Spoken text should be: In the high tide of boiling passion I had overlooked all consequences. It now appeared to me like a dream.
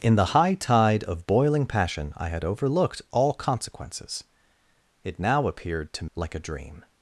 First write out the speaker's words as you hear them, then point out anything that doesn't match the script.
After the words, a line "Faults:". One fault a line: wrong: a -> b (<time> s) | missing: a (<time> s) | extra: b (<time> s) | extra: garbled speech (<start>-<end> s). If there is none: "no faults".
In the high tide of boiling passion I had overlooked all consequences. It now appeared to like a dream.
Faults:
missing: me (6.0 s)